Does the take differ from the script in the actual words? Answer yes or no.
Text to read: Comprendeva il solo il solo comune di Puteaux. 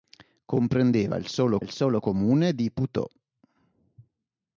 no